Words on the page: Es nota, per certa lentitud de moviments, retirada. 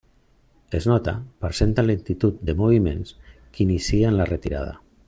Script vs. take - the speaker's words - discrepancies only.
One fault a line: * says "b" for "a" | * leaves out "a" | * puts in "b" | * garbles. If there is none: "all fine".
* puts in "que inicien la"